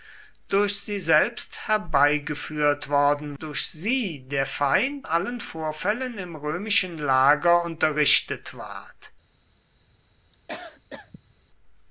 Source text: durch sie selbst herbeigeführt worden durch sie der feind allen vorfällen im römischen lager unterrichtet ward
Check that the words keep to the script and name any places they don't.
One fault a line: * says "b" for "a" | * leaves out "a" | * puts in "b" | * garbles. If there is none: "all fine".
all fine